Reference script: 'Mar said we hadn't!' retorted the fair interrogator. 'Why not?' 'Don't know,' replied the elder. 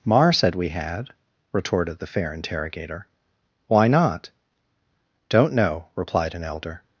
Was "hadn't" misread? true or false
true